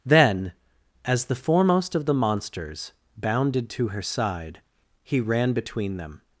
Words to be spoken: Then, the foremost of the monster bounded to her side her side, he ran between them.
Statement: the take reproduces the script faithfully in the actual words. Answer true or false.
false